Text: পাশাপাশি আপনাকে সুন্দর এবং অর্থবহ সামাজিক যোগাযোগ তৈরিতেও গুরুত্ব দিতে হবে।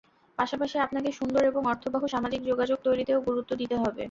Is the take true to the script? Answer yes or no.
yes